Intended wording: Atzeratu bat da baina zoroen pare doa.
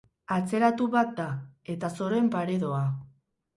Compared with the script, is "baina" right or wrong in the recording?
wrong